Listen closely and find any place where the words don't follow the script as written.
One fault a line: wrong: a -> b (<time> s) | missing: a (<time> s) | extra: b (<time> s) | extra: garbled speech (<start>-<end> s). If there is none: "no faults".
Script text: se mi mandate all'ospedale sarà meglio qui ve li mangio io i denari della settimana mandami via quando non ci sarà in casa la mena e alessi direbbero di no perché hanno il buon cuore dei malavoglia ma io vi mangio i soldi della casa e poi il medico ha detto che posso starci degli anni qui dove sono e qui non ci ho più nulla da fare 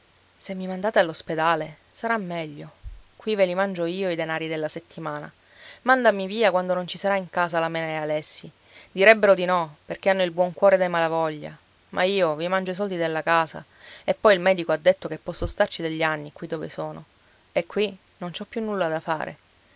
no faults